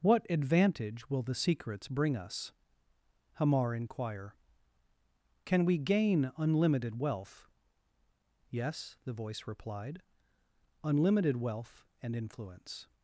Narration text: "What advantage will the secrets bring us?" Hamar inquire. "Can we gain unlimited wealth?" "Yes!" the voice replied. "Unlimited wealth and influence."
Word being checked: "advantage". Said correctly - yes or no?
yes